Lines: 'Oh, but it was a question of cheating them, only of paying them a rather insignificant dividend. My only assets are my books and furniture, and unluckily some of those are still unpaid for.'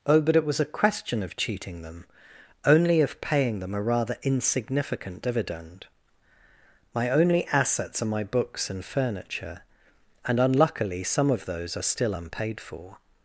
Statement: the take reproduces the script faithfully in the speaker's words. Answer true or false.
true